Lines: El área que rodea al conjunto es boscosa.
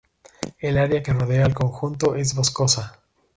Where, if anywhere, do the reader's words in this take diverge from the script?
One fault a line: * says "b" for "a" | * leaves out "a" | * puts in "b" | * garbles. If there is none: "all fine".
all fine